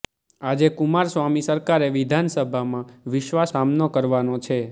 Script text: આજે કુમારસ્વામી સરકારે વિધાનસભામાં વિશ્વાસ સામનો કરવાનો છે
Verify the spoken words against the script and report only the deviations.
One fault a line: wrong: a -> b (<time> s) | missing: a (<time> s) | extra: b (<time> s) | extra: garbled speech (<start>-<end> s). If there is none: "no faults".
no faults